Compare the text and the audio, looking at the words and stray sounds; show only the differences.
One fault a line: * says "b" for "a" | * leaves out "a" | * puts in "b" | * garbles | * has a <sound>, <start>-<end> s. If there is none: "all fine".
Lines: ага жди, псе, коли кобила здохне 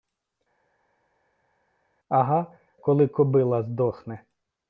* leaves out "жди псе"